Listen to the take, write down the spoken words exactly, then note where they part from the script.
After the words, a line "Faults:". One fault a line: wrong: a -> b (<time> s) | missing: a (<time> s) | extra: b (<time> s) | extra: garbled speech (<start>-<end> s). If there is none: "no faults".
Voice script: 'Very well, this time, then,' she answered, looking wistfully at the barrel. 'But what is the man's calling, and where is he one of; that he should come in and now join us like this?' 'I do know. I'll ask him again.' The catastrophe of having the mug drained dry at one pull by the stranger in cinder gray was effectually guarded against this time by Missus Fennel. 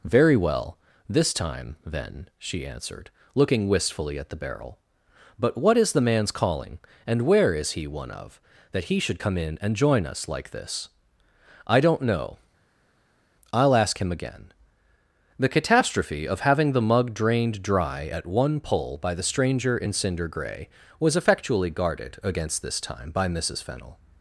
'Very well, this time, then,' she answered, looking wistfully at the barrel. 'But what is the man's calling, and where is he one of; that he should come in and join us like this?' 'I don't know. I'll ask him again.' The catastrophe of having the mug drained dry at one pull by the stranger in cinder gray was effectually guarded against this time by Missus Fennel.
Faults:
missing: now (9.8 s)
wrong: do -> don't (11.8 s)